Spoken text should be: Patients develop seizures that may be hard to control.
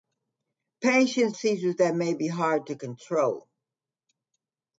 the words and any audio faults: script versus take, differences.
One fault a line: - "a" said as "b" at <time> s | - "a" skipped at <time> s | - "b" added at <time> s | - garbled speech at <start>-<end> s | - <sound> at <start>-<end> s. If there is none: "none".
- "develop" skipped at 1.4 s